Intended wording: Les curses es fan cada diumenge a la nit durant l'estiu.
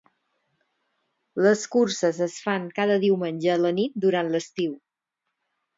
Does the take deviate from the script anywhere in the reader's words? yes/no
no